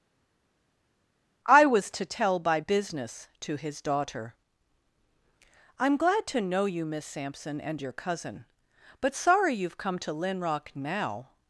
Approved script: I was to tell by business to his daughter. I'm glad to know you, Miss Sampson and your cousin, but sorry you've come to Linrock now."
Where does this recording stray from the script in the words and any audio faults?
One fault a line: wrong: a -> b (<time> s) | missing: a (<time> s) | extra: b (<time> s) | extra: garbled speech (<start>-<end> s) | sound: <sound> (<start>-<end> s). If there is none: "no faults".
no faults